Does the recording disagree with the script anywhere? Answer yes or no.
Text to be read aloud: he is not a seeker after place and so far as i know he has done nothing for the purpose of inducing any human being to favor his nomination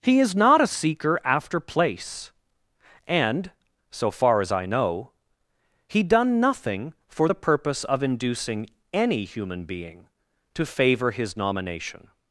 yes